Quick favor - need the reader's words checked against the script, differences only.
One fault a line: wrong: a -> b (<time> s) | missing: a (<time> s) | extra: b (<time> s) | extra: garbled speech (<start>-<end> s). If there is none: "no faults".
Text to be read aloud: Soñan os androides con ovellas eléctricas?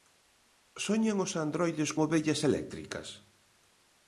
missing: con (1.9 s)